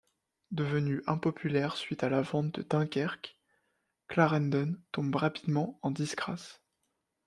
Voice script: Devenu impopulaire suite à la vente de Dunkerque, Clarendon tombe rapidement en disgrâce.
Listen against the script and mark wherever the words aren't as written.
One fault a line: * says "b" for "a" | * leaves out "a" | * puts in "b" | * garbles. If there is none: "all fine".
all fine